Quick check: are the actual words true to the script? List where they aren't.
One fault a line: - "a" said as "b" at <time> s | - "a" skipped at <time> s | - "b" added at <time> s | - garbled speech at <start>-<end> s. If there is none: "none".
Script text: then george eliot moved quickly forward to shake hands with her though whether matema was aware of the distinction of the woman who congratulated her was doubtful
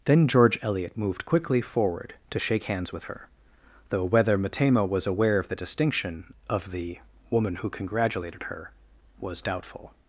none